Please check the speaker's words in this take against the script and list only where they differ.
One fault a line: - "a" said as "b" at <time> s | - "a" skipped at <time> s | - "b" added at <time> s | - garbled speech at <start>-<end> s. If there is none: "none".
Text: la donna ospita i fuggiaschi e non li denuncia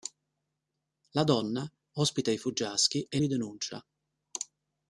- "non" skipped at 3.2 s